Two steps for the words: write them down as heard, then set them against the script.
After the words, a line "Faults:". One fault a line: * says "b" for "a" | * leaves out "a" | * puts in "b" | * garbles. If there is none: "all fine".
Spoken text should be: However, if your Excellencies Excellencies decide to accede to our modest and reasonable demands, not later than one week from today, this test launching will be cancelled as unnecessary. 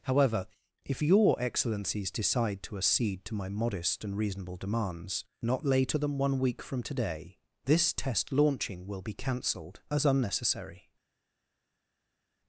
However, if your Excellencies decide to accede to my modest and reasonable demands, not later than one week from today, this test launching will be cancelled as unnecessary.
Faults:
* leaves out "Excellencies"
* says "my" for "our"